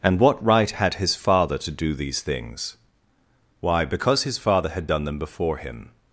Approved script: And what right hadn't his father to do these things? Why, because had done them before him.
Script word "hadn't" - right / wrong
wrong